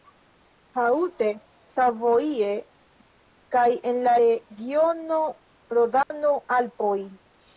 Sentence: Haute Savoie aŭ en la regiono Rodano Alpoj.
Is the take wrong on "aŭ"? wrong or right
wrong